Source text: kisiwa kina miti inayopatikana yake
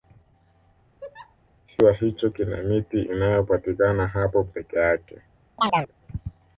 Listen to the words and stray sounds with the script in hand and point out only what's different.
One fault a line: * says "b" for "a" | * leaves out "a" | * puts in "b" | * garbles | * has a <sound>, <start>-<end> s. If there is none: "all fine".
* has a laugh, 1.0-1.4 s
* puts in "hicho"
* puts in "hapo peke"
* has a chirp, 5.6-5.9 s